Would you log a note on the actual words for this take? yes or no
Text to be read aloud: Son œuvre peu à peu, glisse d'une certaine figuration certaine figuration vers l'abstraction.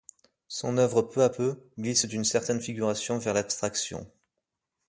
yes